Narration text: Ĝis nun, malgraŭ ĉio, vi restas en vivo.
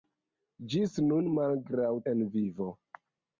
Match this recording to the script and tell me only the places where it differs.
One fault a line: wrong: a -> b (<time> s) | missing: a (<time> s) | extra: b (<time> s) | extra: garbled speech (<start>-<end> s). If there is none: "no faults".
missing: ĉio vi restas (1.9 s)